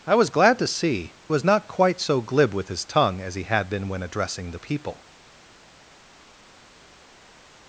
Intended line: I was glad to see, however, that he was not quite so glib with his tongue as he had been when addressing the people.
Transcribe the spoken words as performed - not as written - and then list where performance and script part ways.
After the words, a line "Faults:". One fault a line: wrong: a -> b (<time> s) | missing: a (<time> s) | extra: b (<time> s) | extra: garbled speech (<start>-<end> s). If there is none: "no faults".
I was glad to see, was not quite so glib with his tongue as he had been when addressing the people.
Faults:
missing: however that he (1.1 s)